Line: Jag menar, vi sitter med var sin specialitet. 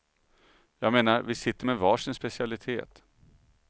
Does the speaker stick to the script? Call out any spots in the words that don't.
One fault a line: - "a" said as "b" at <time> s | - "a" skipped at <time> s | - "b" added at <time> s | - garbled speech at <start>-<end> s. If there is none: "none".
none